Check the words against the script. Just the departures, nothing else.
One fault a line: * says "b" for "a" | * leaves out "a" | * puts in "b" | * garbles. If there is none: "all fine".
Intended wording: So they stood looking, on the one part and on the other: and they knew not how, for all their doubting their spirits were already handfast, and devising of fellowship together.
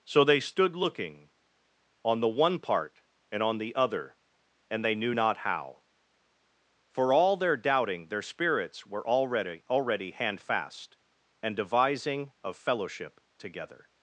* puts in "already"